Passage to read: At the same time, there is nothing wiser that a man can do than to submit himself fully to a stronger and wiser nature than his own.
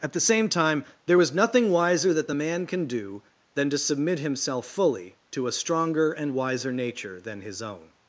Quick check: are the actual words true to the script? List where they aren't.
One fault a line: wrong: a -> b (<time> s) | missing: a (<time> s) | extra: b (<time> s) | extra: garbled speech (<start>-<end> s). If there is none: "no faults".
wrong: is -> was (1.2 s)
wrong: a -> the (2.3 s)